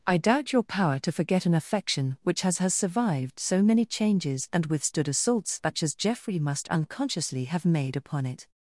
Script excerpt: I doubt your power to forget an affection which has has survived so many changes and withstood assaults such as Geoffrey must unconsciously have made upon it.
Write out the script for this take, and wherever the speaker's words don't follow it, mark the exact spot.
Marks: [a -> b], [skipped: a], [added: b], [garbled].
I doubt your power to forget an affection which has has survived so many changes and withstood assaults such as Geoffrey must unconsciously have made upon it.